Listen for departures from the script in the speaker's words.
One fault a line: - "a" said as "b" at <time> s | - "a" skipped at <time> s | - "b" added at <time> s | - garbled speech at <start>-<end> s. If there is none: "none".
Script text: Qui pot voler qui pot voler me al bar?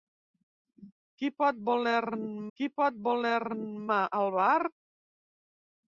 none